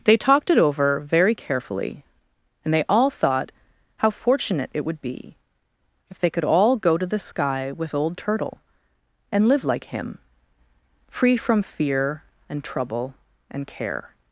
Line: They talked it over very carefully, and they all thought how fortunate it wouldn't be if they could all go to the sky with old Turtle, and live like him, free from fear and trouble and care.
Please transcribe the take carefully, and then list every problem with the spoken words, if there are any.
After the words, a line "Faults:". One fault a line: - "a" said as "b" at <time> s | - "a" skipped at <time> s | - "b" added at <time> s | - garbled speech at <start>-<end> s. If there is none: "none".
They talked it over very carefully, and they all thought how fortunate it would be if they could all go to the sky with old Turtle, and live like him, free from fear and trouble and care.
Faults:
- "wouldn't" said as "would" at 4.8 s